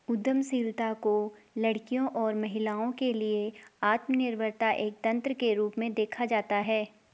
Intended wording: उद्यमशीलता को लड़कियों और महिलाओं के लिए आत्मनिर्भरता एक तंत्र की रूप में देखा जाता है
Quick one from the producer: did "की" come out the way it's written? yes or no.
no